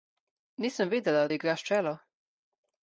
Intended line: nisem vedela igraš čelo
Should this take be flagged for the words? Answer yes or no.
no